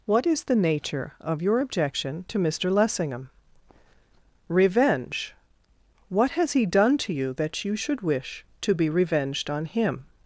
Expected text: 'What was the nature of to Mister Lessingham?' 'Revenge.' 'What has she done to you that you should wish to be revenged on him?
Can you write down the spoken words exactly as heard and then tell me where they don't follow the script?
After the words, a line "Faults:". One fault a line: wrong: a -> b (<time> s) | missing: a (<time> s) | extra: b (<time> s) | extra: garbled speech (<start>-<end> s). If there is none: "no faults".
'What is the nature of your objection to Mister Lessingham?' 'Revenge.' 'What has he done to you that you should wish to be revenged on him?
Faults:
wrong: was -> is (0.2 s)
extra: your objection (1.4 s)
wrong: she -> he (6.5 s)